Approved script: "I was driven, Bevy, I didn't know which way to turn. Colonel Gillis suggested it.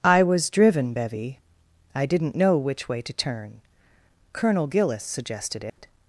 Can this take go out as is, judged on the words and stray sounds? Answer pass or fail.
fail